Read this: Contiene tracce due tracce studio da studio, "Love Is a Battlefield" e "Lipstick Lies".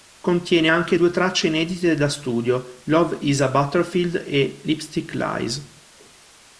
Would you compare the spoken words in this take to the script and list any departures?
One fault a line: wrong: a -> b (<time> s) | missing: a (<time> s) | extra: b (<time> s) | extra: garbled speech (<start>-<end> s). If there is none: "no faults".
wrong: tracce -> anche (0.7 s)
wrong: studio -> inedite (1.5 s)